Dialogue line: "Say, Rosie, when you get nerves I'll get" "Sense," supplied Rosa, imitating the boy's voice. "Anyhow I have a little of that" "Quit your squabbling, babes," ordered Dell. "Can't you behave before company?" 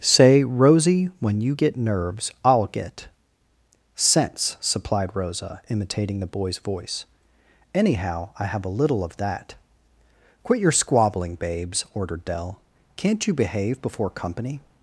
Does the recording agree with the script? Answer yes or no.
yes